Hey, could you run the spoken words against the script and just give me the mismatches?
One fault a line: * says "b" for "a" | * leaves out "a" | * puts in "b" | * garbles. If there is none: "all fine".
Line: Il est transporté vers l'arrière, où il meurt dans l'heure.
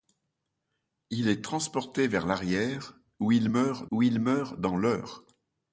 * puts in "où il meurt"